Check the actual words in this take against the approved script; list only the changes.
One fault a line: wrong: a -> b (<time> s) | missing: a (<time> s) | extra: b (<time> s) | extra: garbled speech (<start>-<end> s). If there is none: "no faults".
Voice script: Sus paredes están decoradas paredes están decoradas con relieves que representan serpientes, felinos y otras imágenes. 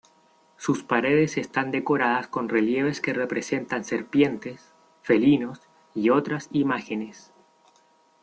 missing: paredes están decoradas (2.3 s)